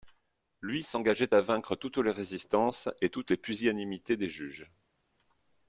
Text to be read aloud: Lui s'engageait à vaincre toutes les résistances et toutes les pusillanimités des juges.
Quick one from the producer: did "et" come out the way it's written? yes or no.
yes